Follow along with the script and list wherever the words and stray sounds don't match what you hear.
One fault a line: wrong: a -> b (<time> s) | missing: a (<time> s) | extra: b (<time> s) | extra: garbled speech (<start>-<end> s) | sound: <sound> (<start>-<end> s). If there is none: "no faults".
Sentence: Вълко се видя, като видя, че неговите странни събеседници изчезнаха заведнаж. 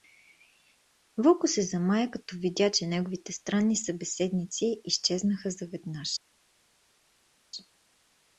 wrong: видя -> замая (1.6 s)